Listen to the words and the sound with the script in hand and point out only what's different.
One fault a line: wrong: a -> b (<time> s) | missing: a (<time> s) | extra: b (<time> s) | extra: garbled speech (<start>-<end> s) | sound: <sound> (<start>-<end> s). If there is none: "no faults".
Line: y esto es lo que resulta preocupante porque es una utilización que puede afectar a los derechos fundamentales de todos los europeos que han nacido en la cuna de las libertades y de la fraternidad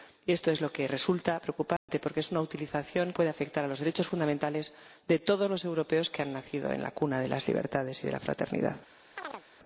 sound: dropout (1.8-1.9 s)
missing: que (3.1 s)
sound: chirp (9.2-9.4 s)